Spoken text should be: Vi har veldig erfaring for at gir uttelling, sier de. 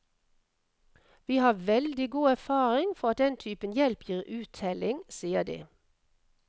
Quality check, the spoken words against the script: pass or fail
fail